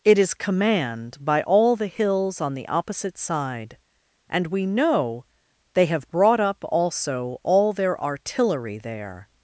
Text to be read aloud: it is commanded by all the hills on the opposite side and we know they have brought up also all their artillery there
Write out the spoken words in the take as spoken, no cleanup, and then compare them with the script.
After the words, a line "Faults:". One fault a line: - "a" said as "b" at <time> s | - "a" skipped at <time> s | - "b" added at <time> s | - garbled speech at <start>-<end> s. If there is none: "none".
it is command by all the hills on the opposite side and we know they have brought up also all their artillery there
Faults:
- "commanded" said as "command" at 0.3 s